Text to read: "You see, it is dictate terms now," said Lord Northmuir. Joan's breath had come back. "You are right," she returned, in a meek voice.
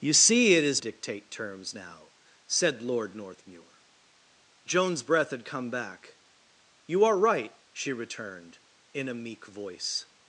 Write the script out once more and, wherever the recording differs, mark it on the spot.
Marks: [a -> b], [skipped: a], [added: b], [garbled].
"You see, it is dictate terms now," said Lord Northmuir. Joan's breath had come back. "You are right," she returned, in a meek voice.